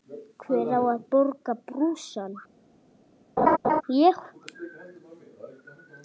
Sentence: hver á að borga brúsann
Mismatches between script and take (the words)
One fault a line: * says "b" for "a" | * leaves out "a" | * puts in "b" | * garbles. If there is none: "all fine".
all fine